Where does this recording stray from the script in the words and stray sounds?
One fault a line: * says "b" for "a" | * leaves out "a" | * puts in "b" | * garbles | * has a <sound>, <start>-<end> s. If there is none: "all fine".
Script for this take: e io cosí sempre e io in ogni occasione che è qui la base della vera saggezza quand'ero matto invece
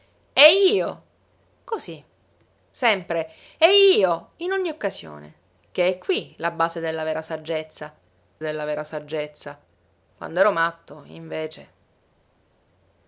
* puts in "della vera saggezza"